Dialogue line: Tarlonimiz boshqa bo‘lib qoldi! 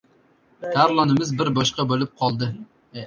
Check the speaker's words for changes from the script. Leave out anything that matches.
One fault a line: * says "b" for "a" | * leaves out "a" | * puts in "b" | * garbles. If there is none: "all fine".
* puts in "bir"